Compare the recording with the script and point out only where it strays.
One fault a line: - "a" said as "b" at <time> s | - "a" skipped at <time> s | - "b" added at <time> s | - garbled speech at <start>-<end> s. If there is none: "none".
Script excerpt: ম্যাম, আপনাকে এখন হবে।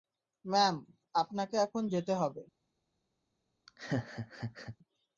- "যেতে" added at 1.9 s